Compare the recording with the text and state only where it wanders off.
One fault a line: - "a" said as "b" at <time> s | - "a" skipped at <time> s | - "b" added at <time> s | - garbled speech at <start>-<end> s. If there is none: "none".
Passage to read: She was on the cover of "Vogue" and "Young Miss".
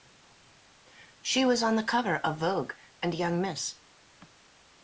none